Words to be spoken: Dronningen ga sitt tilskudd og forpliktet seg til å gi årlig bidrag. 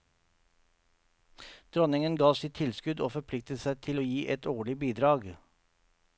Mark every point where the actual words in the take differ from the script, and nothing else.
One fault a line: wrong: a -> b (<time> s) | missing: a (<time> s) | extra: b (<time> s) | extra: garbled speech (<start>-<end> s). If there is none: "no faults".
extra: et (4.3 s)